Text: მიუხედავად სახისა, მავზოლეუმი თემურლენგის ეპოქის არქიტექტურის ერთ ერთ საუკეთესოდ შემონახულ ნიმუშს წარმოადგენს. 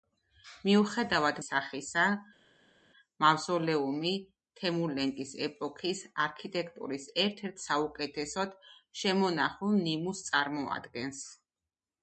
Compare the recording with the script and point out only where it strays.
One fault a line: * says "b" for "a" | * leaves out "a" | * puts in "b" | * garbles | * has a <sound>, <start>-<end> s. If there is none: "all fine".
all fine